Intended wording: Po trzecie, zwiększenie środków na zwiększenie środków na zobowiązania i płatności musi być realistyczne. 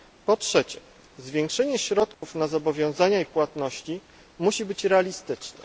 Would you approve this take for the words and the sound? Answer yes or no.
no